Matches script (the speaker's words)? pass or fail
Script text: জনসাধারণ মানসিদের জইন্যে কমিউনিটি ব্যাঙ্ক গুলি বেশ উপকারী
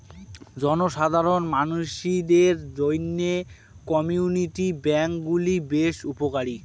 pass